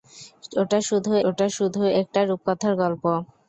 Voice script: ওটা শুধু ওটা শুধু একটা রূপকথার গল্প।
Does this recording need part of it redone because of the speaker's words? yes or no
no